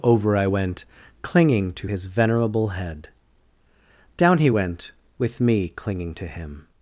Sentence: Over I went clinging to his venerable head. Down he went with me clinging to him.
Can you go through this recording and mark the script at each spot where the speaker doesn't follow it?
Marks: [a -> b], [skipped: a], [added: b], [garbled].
Over I went clinging to his venerable head. Down he went with me clinging to him.